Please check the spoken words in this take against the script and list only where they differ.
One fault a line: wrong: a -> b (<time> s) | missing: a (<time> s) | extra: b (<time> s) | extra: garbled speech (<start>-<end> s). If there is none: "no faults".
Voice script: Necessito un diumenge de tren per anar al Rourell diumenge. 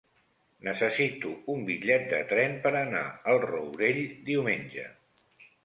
wrong: diumenge -> bitllet (1.7 s)